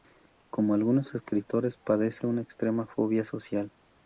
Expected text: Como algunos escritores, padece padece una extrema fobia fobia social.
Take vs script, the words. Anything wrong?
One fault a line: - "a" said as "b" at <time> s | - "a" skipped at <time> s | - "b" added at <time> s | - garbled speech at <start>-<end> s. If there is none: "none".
- "padece" skipped at 2.2 s
- "fobia" skipped at 3.2 s